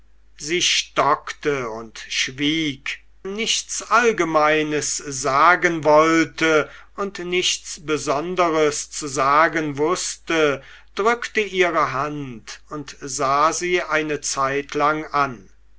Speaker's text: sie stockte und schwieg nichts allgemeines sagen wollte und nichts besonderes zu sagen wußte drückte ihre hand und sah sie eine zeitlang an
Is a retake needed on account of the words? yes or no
no